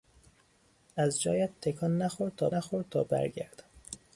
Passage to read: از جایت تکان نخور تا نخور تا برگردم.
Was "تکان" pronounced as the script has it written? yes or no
yes